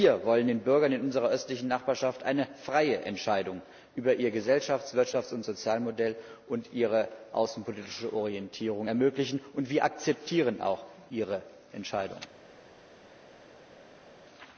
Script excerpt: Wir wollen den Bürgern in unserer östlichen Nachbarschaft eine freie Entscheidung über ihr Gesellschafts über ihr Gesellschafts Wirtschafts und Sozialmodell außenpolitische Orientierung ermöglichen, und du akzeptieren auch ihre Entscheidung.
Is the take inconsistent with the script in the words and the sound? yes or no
yes